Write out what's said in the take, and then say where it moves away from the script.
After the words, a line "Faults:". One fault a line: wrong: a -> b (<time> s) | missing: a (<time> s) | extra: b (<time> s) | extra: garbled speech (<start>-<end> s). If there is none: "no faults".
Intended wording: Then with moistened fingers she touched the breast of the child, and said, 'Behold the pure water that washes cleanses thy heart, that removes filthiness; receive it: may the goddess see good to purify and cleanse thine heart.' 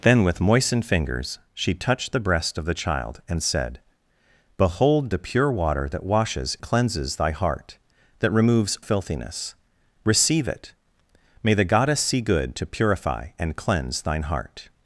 Then with moistened fingers she touched the breast of the child, and said, 'Behold the pure water that washes cleanses thy heart, that removes filthiness; receive it: may the goddess see good to purify and cleanse thine heart.'
Faults:
no faults